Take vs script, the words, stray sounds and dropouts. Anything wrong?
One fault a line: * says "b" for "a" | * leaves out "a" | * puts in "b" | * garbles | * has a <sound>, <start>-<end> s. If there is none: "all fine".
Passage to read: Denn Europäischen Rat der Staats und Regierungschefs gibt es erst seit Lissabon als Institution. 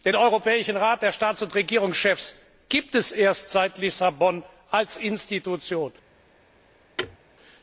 * has a thud, 7.0-7.2 s